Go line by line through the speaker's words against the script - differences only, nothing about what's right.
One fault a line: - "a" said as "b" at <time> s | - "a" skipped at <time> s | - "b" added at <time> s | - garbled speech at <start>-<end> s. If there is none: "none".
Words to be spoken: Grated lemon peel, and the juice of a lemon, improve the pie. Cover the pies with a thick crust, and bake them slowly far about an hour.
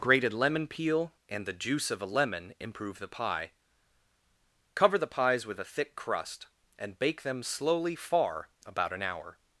none